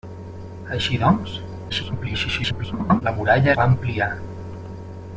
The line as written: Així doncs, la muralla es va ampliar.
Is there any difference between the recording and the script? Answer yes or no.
yes